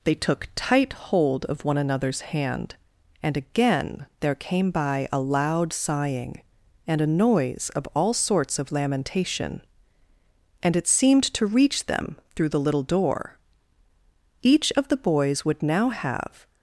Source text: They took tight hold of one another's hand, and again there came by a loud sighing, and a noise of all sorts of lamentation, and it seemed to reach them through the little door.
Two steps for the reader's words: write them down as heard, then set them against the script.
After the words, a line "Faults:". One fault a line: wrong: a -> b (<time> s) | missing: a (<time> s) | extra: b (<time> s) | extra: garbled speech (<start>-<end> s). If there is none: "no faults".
They took tight hold of one another's hand, and again there came by a loud sighing, and a noise of all sorts of lamentation, and it seemed to reach them through the little door. Each of the boys would now have
Faults:
extra: Each of the boys would now have (14.4 s)